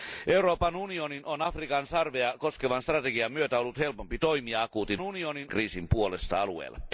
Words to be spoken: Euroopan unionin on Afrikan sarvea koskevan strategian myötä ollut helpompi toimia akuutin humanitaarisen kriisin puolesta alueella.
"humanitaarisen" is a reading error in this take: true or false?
true